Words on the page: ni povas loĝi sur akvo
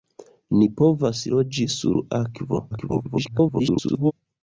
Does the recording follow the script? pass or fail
fail